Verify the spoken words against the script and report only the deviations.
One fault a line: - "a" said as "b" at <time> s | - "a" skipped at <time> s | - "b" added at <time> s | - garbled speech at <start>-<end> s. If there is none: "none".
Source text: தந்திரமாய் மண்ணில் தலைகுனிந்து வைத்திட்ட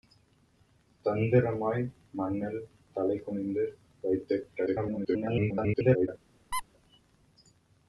- garbled speech at 4.7-6.1 s